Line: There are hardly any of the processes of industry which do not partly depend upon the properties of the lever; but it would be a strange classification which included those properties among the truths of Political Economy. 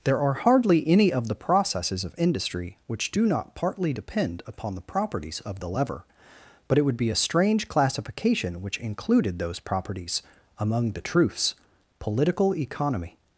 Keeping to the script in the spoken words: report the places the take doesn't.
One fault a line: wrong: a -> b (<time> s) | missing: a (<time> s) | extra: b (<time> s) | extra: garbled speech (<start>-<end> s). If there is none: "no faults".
missing: of (11.5 s)